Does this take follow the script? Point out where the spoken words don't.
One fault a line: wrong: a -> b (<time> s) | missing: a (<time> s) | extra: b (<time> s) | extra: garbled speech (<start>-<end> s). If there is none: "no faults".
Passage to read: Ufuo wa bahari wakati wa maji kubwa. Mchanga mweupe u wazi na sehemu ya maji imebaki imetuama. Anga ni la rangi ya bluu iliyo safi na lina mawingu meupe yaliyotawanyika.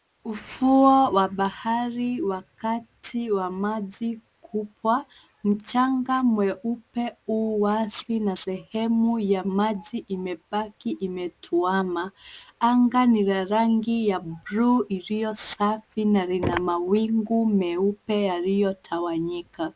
no faults